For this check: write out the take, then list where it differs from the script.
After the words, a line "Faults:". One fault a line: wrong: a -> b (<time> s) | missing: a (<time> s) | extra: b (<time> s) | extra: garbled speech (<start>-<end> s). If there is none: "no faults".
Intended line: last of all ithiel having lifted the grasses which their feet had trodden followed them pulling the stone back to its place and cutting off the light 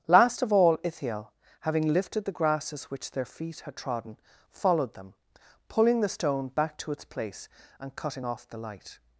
last of all ithiel having lifted the grasses which their feet had trodden followed them pulling the stone back to its place and cutting off the light
Faults:
no faults